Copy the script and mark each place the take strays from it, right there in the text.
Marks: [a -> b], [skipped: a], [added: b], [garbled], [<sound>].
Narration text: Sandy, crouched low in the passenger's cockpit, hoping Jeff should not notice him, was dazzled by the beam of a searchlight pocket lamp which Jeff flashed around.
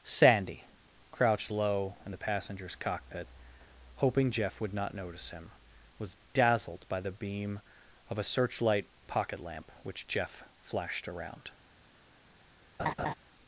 Sandy, crouched low in the passenger's cockpit, hoping Jeff [should -> would] not notice him, was dazzled by the beam of a searchlight pocket lamp which Jeff flashed around. [laugh]